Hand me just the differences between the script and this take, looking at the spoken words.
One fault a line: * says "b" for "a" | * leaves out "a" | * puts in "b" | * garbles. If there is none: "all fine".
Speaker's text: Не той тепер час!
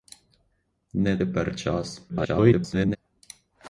* leaves out "той"
* garbles